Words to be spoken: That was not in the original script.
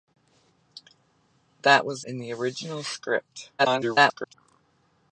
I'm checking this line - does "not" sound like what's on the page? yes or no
no